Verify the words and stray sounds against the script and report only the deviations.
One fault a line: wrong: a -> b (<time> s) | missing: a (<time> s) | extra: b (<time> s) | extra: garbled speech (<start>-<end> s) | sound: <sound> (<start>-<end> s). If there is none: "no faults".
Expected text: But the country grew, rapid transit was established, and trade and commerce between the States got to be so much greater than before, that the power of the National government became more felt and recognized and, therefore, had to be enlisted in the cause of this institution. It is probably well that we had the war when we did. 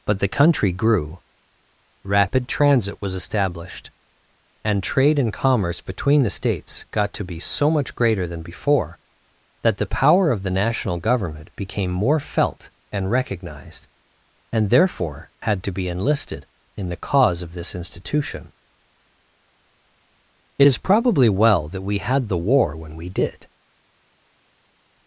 no faults